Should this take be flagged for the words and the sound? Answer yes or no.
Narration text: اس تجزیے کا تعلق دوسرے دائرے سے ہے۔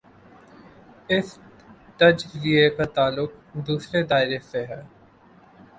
no